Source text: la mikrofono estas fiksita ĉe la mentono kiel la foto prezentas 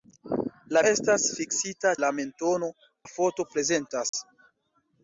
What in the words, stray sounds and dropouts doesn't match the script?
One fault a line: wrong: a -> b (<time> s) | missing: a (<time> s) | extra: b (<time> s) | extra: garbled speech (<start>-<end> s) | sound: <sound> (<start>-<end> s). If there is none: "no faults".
missing: mikrofono (0.8 s)
missing: ĉe (1.9 s)
missing: kiel (2.7 s)
sound: dropout (4.1-4.1 s)